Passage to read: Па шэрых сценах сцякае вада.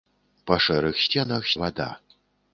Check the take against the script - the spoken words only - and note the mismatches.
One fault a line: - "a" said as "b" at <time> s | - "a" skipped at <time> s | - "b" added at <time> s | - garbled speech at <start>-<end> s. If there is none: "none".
- "сцякае" skipped at 1.5 s